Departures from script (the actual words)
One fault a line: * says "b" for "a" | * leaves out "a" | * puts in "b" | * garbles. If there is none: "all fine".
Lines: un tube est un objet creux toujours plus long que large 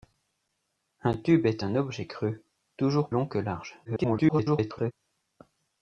* leaves out "plus"
* garbles